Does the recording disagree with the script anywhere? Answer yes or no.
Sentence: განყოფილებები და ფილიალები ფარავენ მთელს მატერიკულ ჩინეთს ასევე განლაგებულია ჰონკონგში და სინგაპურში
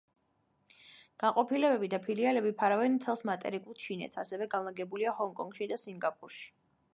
no